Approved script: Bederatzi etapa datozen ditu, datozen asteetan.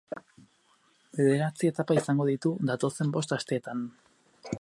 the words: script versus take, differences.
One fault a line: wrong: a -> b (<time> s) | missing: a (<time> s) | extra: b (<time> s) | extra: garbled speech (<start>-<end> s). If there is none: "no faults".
wrong: datozen -> izango (2.0 s)
extra: bost (3.2 s)